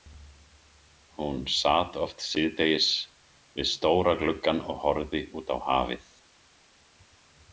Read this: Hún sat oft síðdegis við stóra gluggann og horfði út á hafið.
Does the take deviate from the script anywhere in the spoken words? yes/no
no